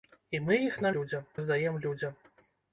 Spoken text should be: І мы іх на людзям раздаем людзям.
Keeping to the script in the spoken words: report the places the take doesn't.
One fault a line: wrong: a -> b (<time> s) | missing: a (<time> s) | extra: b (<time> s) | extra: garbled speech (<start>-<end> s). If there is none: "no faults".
no faults